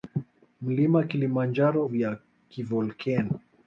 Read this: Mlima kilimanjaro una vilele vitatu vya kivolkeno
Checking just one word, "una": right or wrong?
wrong